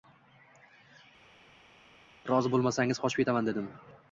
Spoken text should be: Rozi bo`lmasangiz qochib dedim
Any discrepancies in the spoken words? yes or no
yes